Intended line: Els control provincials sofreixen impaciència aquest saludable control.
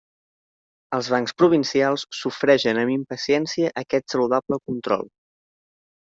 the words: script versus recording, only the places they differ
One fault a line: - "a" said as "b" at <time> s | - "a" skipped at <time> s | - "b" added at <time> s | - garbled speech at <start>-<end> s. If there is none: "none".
- "control" said as "bancs" at 1.1 s
- "amb" added at 2.8 s